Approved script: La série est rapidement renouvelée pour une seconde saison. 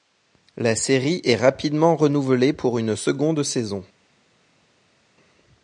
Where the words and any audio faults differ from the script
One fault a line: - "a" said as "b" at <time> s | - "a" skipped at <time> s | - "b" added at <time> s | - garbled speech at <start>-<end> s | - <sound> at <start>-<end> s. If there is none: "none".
none